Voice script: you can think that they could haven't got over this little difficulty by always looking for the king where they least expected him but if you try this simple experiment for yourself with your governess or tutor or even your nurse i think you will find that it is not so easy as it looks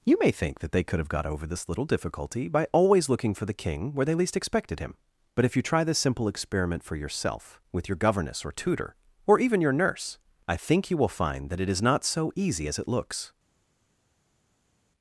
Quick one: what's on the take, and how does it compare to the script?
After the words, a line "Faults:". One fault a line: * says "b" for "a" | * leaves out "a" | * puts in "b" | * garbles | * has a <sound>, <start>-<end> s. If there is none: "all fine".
you may think that they could have got over this little difficulty by always looking for the king where they least expected him but if you try this simple experiment for yourself with your governess or tutor or even your nurse i think you will find that it is not so easy as it looks
Faults:
* says "may" for "can"
* says "have" for "haven't"